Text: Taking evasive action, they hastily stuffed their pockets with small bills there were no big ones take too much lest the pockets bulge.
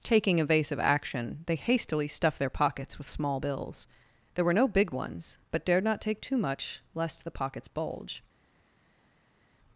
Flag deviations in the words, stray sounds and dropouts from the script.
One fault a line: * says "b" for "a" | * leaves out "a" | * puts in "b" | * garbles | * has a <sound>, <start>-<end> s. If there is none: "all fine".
* puts in "but dared not"